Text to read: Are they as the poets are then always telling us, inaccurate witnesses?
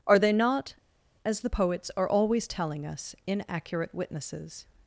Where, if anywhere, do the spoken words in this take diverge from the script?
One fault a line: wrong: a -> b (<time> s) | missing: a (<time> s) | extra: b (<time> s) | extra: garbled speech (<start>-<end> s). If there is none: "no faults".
extra: not (0.3 s)
missing: then (2.1 s)